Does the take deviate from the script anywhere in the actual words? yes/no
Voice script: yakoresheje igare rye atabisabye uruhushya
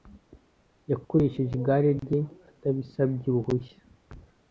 no